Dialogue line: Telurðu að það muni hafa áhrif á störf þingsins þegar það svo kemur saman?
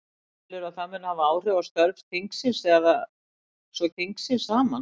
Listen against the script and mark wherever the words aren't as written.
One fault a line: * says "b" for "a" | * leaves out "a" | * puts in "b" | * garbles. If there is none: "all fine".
* says "þingsins" for "kemur"